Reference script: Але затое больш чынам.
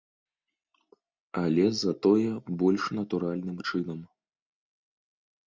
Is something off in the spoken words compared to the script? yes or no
yes